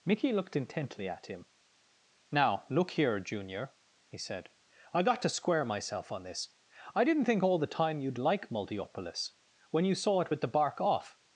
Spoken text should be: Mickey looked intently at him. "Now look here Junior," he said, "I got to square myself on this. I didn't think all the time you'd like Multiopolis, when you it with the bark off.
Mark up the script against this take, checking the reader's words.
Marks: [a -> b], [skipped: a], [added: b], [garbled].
Mickey looked intently at him. "Now look here Junior," he said, "I got to square myself on this. I didn't think all the time you'd like Multiopolis, when you [added: saw] it with the bark off.